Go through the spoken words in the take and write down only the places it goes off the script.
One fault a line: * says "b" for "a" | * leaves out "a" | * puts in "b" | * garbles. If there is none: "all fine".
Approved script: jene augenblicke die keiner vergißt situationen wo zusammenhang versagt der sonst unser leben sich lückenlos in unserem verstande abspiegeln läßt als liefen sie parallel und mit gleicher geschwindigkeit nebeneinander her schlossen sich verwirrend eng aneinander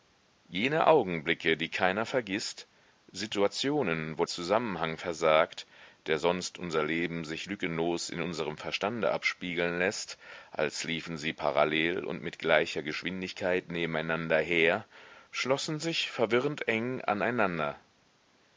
all fine